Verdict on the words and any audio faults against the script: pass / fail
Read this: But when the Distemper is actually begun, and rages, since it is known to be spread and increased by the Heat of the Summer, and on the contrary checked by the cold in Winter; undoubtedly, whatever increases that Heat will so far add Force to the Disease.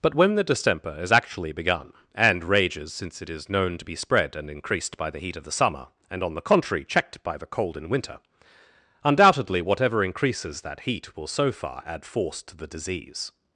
pass